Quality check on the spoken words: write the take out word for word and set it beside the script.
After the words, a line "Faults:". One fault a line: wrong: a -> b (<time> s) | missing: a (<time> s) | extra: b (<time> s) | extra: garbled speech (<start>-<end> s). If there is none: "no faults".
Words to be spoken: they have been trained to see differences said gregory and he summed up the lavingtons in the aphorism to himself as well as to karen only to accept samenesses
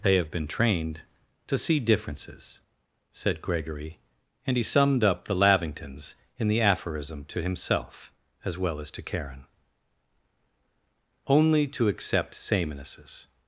they have been trained to see differences said gregory and he summed up the lavingtons in the aphorism to himself as well as to karen only to accept samenesses
Faults:
no faults